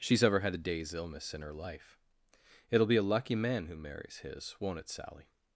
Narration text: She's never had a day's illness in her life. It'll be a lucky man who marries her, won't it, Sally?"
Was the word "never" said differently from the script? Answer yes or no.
yes